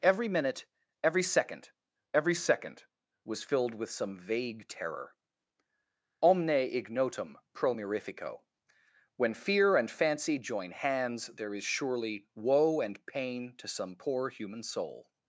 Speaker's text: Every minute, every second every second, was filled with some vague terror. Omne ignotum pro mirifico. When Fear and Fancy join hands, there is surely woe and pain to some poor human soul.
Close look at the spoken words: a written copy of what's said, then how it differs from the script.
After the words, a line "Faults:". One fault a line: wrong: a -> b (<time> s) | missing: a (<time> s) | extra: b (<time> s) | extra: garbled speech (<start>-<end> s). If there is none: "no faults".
Every minute, every second every second, was filled with some vague terror. Omne ignotum pro mirifico. When Fear and Fancy join hands, there is surely woe and pain to some poor human soul.
Faults:
no faults